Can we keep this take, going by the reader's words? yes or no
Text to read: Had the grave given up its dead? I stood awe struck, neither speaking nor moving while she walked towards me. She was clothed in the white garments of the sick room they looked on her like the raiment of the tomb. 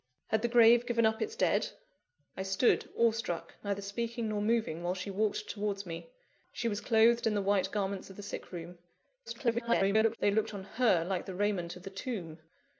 no